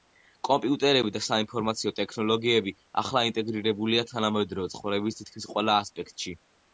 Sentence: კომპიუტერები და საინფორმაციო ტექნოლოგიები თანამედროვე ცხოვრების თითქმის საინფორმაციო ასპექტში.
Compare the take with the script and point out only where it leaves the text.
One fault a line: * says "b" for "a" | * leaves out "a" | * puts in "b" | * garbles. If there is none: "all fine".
* puts in "ახლა ინტეგრირებულია"
* says "ყველა" for "საინფორმაციო"